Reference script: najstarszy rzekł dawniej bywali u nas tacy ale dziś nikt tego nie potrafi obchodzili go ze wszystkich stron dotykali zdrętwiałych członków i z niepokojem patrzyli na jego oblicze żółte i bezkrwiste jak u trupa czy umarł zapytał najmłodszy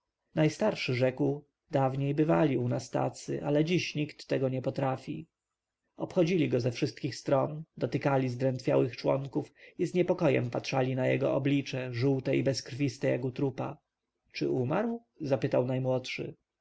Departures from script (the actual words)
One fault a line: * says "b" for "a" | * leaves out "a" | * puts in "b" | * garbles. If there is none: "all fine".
all fine